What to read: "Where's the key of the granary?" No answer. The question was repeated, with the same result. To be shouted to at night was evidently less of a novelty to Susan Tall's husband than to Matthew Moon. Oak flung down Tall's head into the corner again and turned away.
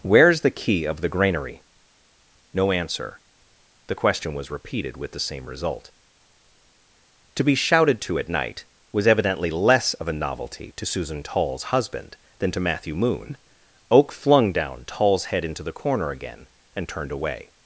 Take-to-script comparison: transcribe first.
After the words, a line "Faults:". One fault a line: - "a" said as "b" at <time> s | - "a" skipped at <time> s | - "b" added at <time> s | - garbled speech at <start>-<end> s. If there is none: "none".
"Where's the key of the granary?" No answer. The question was repeated, with the same result. To be shouted to at night was evidently less of a novelty to Susan Tall's husband than to Matthew Moon. Oak flung down Tall's head into the corner again and turned away.
Faults:
none